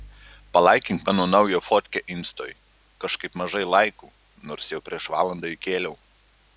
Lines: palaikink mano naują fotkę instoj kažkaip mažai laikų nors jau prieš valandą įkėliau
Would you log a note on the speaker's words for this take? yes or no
no